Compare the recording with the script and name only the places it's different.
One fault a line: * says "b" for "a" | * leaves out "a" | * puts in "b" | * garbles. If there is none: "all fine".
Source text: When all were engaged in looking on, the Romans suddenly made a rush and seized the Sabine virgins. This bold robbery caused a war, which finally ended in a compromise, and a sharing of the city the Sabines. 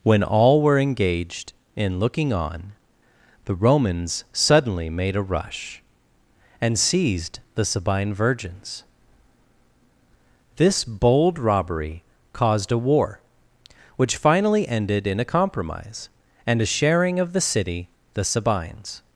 all fine